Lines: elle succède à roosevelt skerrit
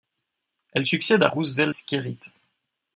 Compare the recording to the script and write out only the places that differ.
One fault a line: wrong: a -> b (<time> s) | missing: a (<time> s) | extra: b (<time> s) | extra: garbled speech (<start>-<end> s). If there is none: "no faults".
no faults